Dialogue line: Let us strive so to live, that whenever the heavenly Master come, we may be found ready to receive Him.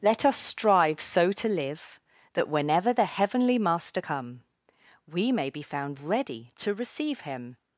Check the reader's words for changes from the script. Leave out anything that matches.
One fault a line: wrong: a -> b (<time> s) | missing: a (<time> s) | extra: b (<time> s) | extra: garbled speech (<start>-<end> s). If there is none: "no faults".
no faults